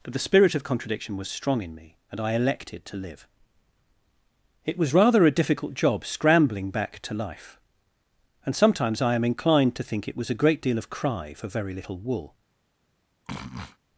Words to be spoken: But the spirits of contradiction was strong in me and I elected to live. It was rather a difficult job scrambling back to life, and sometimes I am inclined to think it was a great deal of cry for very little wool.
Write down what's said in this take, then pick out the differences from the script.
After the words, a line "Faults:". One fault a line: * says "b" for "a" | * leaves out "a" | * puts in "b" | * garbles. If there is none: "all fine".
But the spirit of contradiction was strong in me and I elected to live. It was rather a difficult job scrambling back to life, and sometimes I am inclined to think it was a great deal of cry for very little wool.
Faults:
* says "spirit" for "spirits"